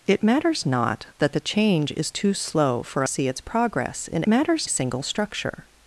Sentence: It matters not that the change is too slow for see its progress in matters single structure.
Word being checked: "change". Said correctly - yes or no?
yes